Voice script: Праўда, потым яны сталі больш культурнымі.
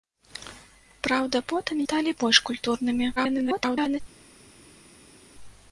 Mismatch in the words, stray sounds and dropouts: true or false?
true